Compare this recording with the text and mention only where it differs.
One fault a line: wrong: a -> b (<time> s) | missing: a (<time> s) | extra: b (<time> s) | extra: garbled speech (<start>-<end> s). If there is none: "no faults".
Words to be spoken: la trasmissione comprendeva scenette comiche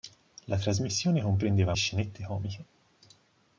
no faults